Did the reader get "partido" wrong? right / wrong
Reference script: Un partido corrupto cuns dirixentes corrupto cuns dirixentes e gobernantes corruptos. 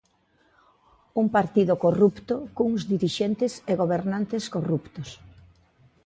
right